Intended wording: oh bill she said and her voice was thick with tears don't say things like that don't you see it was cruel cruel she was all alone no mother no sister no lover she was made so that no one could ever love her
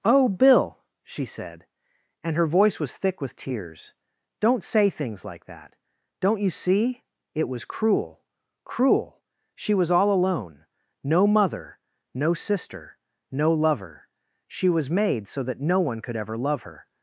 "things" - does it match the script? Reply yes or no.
yes